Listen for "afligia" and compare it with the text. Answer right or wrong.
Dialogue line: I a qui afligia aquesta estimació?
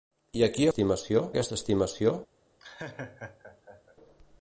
wrong